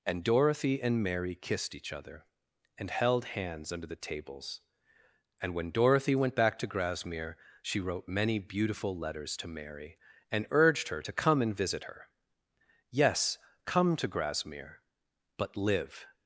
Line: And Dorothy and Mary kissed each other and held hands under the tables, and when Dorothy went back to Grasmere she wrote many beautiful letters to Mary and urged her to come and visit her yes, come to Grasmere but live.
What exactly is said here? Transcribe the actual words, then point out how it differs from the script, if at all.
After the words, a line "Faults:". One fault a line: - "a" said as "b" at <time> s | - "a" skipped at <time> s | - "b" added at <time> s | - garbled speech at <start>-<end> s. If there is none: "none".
And Dorothy and Mary kissed each other and held hands under the tables, and when Dorothy went back to Grasmere she wrote many beautiful letters to Mary and urged her to come and visit her yes, come to Grasmere but live.
Faults:
none